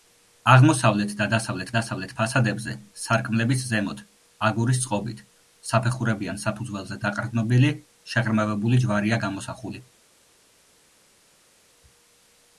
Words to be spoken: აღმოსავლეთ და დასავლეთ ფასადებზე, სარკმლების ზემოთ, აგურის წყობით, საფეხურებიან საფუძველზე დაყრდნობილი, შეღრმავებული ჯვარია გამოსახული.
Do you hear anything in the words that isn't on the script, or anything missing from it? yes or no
yes